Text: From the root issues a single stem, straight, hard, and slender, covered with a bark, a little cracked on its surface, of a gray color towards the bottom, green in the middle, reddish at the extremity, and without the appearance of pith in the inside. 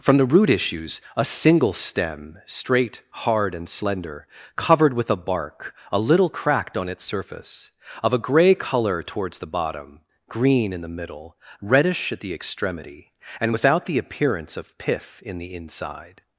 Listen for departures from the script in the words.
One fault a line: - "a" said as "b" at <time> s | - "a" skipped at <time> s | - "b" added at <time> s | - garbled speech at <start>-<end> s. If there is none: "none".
none